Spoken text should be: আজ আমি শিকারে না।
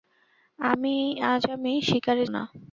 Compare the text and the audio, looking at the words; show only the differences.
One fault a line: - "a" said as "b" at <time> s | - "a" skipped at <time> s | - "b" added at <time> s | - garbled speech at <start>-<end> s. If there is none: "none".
none